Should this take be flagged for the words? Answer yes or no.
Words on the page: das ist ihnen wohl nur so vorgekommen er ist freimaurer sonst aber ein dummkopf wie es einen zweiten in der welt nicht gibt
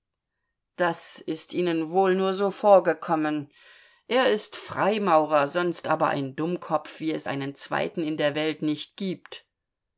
no